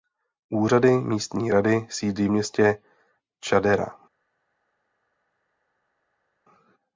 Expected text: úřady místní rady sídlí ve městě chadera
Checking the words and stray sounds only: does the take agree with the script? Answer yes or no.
no